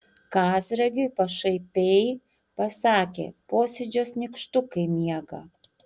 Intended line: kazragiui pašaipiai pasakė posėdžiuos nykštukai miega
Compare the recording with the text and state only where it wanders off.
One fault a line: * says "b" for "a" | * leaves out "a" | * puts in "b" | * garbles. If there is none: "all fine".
all fine